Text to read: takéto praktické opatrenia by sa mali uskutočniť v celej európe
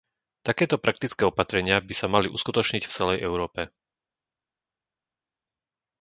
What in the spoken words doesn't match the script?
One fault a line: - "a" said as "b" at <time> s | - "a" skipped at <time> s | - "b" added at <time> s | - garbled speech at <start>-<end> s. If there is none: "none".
none